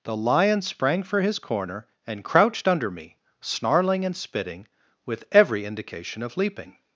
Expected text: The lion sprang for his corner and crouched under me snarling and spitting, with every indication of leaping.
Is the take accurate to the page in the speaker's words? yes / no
yes